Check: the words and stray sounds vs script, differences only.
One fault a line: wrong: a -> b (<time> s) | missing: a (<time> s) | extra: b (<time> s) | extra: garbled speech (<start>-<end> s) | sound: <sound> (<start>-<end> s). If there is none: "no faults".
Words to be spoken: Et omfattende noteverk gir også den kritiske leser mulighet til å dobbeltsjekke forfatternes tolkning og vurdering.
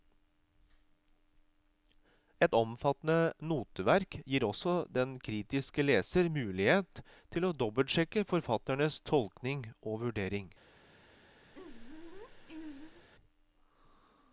sound: laugh (11.5-13.1 s)